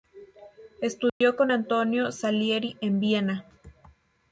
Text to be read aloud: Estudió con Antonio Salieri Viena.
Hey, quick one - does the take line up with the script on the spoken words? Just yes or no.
no